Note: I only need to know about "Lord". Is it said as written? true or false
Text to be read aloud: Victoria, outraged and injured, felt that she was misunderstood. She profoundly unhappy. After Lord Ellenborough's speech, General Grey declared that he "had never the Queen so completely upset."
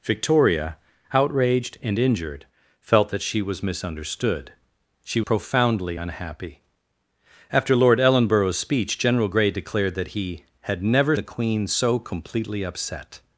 true